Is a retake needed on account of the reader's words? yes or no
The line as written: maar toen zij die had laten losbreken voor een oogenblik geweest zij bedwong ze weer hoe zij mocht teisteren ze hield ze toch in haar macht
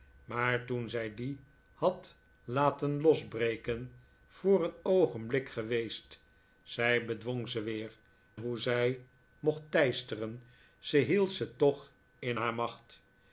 no